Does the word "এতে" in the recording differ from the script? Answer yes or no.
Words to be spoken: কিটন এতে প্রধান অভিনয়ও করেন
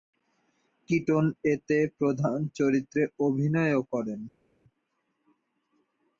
no